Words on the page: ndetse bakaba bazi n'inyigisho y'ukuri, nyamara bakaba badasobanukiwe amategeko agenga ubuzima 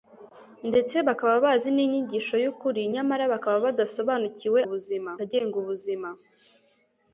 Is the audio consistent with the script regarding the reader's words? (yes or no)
no